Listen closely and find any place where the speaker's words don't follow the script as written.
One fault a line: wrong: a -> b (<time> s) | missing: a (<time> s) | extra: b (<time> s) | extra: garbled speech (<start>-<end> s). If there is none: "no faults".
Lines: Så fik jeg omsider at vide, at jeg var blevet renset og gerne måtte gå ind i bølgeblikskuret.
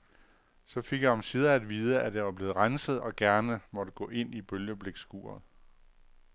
no faults